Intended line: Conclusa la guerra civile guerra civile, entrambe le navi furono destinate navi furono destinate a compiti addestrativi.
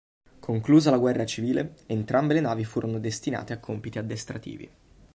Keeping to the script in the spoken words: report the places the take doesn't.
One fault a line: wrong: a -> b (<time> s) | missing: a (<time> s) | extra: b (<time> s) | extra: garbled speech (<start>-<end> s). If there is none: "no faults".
missing: guerra civile (1.8 s)
missing: navi furono destinate (3.5 s)